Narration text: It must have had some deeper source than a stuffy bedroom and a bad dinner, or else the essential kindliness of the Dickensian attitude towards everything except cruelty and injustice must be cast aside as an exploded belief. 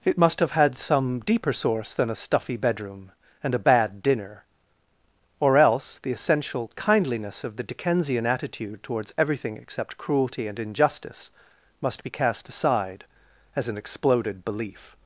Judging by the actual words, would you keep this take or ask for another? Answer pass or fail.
pass